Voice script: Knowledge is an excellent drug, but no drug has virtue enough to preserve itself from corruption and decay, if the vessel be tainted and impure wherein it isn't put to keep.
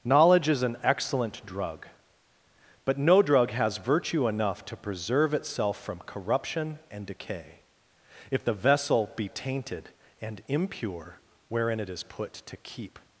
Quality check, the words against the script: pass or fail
fail